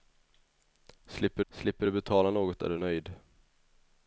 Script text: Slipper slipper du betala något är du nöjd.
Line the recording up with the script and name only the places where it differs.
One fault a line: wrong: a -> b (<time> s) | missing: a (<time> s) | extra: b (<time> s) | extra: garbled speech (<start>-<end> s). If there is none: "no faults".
no faults